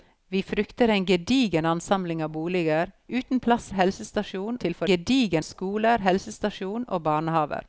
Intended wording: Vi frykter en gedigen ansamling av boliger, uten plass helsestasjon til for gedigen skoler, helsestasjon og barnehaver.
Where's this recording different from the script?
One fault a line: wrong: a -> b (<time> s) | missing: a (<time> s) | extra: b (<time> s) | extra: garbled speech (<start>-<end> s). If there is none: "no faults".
no faults